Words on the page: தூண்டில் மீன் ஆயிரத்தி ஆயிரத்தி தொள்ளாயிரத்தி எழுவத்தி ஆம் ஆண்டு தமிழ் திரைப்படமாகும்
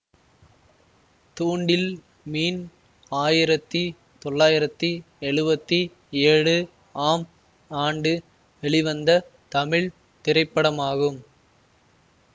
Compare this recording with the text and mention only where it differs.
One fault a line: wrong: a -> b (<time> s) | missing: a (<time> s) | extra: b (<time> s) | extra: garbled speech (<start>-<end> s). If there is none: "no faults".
missing: ஆயிரத்தி (3.8 s)
extra: ஏழு (6.2 s)
extra: வெளிவந்த (8.6 s)